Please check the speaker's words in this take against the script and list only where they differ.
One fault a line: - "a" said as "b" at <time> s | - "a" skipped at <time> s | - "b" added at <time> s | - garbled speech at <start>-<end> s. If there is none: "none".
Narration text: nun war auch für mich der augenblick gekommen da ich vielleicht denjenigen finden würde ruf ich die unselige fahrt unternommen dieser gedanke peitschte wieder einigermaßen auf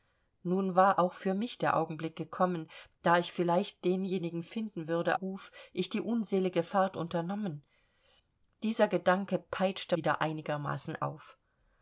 none